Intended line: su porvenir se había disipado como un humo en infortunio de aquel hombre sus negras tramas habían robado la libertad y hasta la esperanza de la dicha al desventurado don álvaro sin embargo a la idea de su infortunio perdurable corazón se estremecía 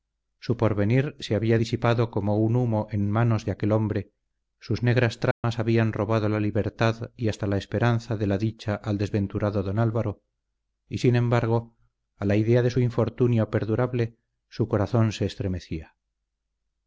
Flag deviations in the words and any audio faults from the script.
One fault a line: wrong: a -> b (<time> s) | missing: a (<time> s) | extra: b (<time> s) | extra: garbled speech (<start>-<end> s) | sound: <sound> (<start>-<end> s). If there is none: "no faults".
wrong: infortunio -> manos (3.1 s)
sound: dropout (5.3-5.4 s)
extra: y (10.9 s)
extra: su (14.5 s)